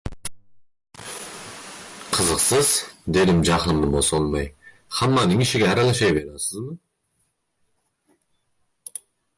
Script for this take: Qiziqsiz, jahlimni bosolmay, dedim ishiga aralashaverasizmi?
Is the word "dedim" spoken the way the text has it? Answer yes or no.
no